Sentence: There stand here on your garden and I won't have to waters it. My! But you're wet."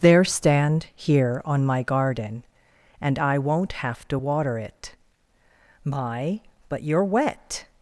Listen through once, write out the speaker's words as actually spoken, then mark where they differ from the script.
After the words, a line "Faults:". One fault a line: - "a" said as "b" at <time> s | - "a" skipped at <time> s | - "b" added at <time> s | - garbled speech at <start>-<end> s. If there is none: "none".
There stand here on my garden and I won't have to water it. My! But you're wet."
Faults:
- "your" said as "my" at 1.6 s
- "waters" said as "water" at 4.1 s